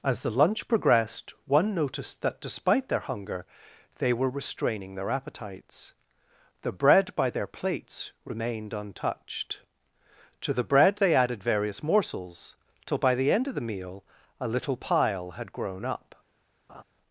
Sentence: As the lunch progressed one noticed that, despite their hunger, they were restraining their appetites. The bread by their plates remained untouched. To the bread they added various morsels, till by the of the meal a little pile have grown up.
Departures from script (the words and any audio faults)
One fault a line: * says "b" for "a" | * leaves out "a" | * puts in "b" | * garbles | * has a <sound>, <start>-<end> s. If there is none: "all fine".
* puts in "end"
* says "had" for "have"
* has a laugh, 16.7-16.8 s